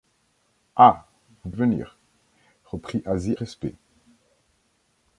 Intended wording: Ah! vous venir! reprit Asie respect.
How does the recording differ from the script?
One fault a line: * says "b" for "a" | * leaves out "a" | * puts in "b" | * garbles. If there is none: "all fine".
all fine